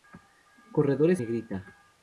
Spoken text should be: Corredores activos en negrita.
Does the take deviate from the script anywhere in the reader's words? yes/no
yes